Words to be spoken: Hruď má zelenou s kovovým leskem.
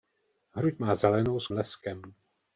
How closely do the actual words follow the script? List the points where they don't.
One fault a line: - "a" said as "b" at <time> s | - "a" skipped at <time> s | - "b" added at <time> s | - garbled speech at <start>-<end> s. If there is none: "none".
- "kovovým" skipped at 1.5 s